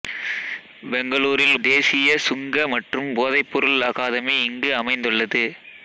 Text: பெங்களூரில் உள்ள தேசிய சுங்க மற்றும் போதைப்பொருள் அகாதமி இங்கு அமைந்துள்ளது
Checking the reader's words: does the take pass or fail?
fail